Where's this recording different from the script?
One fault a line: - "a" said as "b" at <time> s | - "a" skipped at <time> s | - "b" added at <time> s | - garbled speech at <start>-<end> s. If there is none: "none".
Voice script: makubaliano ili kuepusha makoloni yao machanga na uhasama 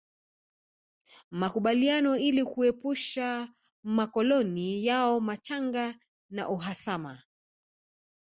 none